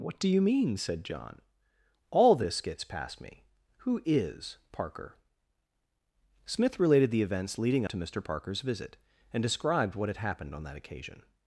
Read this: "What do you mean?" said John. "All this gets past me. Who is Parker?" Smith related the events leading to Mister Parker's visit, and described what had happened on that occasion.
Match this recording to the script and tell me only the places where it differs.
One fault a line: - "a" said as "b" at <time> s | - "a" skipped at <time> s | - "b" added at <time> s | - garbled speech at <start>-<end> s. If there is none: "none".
none